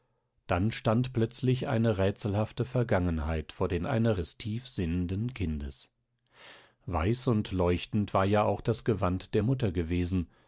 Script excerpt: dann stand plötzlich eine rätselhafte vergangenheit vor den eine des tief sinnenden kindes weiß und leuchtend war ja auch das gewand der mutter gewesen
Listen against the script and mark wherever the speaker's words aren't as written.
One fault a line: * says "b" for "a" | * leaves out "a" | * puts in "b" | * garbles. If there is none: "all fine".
all fine